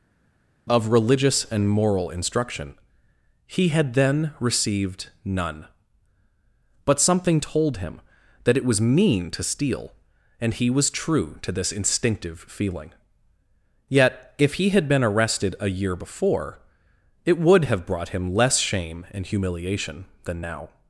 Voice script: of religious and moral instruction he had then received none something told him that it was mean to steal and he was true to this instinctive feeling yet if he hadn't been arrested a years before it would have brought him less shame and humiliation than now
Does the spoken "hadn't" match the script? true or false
false